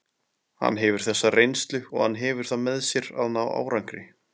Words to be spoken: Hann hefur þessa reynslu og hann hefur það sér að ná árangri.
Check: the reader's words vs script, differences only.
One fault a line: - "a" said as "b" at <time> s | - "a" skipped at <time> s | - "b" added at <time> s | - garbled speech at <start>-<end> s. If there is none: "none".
- "með" added at 2.7 s